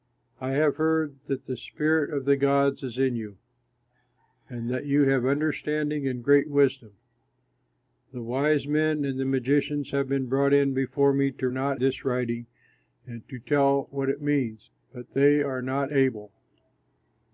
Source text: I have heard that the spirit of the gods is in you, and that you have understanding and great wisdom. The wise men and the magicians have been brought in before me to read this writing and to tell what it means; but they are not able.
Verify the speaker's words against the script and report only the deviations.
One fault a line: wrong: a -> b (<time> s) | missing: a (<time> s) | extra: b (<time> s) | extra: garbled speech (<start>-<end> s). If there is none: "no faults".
wrong: read -> not (11.5 s)